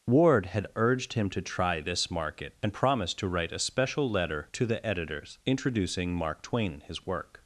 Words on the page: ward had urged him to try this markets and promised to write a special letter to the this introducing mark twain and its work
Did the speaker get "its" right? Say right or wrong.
wrong